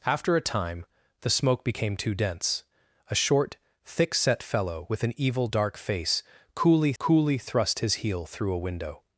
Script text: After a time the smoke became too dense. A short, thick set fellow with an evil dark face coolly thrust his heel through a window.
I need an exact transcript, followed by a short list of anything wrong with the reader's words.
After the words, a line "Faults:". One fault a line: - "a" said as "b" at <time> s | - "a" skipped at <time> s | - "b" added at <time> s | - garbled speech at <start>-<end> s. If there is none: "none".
After a time the smoke became too dense. A short, thick set fellow with an evil dark face coolly coolly thrust his heel through a window.
Faults:
- "coolly" added at 7.0 s